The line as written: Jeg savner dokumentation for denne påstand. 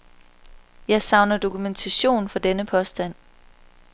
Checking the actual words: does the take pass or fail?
pass